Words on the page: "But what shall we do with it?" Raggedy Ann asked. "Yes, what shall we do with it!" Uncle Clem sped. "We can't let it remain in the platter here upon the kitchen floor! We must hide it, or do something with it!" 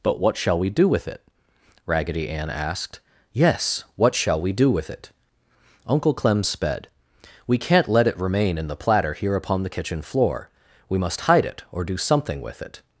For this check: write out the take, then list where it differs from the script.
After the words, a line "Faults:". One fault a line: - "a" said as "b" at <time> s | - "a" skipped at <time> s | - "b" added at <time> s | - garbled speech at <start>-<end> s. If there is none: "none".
"But what shall we do with it?" Raggedy Ann asked. "Yes, what shall we do with it!" Uncle Clem sped. "We can't let it remain in the platter here upon the kitchen floor! We must hide it, or do something with it!"
Faults:
none